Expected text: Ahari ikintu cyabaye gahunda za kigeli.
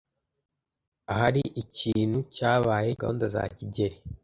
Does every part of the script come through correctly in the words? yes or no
yes